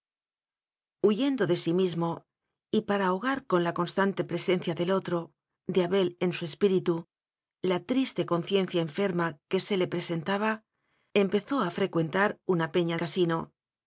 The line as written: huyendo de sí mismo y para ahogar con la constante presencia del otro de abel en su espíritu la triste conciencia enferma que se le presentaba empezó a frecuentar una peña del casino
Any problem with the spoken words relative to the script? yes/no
yes